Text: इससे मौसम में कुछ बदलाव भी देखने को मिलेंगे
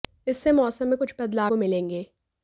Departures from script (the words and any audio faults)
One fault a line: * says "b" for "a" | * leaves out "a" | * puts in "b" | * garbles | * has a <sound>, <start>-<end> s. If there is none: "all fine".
* leaves out "भी देखने"